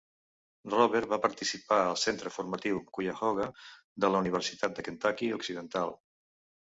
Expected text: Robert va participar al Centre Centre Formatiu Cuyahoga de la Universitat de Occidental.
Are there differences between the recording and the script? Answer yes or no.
yes